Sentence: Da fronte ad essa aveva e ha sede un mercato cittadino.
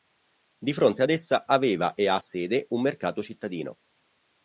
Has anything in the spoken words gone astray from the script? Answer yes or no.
yes